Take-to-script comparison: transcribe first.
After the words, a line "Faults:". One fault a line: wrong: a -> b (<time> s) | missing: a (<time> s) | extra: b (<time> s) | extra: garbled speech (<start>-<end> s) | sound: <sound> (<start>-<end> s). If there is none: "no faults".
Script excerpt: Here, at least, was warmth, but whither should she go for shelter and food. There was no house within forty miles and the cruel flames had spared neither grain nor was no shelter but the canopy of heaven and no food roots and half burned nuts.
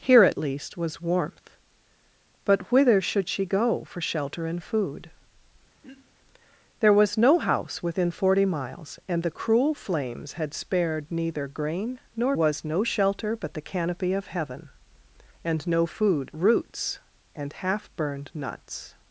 Here, at least, was warmth, but whither should she go for shelter and food. There was no house within forty miles and the cruel flames had spared neither grain nor was no shelter but the canopy of heaven and no food roots and half burned nuts.
Faults:
sound: throat clearing (5.8-6.2 s)